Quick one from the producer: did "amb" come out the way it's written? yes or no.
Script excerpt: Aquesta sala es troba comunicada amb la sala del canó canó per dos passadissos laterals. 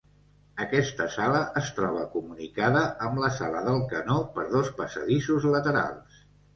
yes